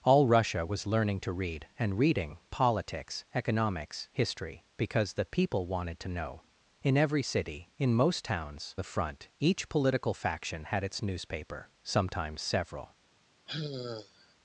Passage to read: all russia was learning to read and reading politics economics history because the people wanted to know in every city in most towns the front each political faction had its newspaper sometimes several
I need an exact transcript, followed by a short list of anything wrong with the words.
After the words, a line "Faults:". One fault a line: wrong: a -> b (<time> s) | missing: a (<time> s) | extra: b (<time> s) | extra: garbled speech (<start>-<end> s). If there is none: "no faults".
all russia was learning to read and reading politics economics history because the people wanted to know in every city in most towns the front each political faction had its newspaper sometimes several
Faults:
no faults